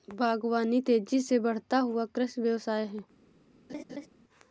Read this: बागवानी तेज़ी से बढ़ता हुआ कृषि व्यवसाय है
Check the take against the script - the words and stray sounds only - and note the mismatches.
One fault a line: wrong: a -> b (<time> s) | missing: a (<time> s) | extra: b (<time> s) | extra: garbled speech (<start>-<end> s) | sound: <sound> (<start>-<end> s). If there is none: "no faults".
sound: laugh (3.7-4.1 s)